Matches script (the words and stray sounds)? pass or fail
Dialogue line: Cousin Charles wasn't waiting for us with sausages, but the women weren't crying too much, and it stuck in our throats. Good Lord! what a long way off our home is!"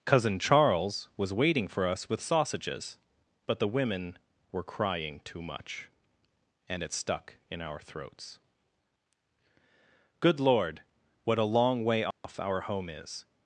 fail